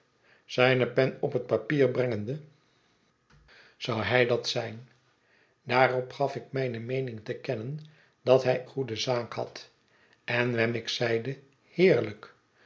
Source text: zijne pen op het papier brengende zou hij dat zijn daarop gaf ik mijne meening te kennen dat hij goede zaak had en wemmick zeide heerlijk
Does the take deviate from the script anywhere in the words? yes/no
no